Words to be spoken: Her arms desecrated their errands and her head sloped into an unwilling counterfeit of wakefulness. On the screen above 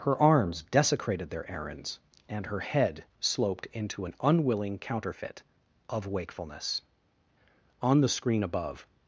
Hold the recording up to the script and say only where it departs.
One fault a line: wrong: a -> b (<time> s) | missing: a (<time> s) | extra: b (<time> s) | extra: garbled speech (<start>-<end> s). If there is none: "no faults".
no faults